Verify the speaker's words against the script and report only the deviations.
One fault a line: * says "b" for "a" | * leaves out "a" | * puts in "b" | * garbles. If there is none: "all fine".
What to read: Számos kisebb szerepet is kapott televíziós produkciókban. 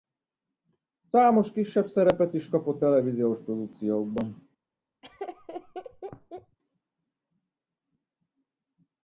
all fine